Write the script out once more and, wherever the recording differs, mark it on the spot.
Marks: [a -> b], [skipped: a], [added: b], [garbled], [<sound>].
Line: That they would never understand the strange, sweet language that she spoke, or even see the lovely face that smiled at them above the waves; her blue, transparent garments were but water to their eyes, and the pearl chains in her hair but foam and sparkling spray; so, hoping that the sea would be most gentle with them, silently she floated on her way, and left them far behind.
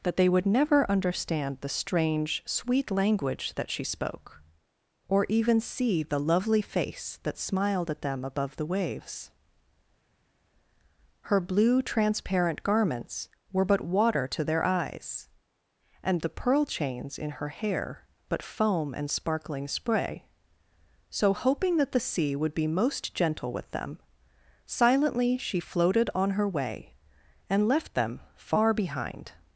That they would never understand the strange, sweet language that she spoke, or even see the lovely face that smiled at them above the waves; her blue, transparent garments were but water to their eyes, and the pearl chains in her hair but foam and sparkling spray; so, hoping that the sea would be most gentle with them, silently she floated on her way, and left them far behind.